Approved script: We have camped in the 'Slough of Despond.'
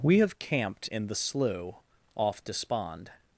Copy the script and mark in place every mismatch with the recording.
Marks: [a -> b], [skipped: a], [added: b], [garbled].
We have camped in the 'Slough [of -> off] Despond.'